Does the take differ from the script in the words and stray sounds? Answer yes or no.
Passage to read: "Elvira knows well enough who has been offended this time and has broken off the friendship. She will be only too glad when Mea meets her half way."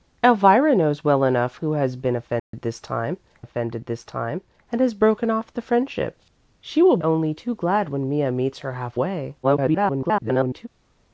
yes